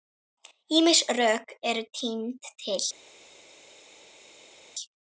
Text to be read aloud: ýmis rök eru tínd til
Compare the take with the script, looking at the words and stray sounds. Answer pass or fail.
pass